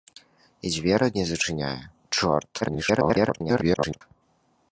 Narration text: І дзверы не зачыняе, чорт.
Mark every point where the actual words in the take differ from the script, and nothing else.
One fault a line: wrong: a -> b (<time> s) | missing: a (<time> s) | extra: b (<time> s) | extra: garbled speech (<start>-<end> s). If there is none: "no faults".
extra: garbled speech (2.6-4.0 s)